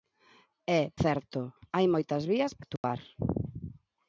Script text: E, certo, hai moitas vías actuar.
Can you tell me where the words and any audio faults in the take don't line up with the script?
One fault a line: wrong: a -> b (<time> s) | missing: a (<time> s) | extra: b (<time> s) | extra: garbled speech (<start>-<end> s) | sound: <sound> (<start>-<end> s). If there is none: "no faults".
sound: dropout (2.8-2.8 s)